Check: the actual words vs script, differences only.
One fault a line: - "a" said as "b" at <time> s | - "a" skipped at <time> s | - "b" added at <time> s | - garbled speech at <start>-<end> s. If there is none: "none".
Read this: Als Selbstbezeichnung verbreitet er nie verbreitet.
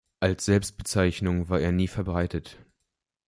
- "verbreitet" said as "war" at 1.5 s